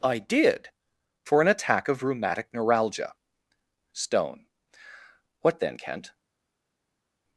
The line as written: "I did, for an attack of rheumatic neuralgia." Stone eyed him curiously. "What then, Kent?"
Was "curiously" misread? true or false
true